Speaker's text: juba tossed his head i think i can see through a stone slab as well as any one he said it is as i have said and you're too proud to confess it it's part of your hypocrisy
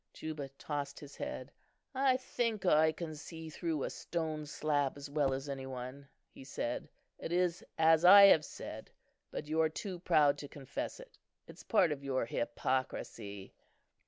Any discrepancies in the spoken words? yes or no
yes